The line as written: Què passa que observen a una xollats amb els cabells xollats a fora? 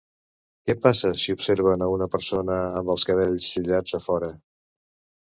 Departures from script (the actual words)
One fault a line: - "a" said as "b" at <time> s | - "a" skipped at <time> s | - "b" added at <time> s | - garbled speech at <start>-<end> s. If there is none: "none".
- "que" said as "si" at 1.2 s
- "xollats" said as "persona" at 2.1 s